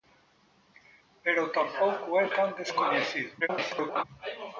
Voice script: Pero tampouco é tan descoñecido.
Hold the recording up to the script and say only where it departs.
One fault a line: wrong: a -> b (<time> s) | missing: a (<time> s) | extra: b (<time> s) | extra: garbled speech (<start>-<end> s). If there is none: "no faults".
extra: garbled speech (3.4-4.0 s)